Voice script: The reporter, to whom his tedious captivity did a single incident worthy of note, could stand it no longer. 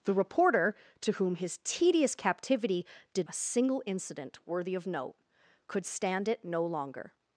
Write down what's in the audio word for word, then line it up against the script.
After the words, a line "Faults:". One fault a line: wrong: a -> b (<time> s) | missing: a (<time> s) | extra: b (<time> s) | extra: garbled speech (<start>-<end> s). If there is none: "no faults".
The reporter, to whom his tedious captivity did a single incident worthy of note, could stand it no longer.
Faults:
no faults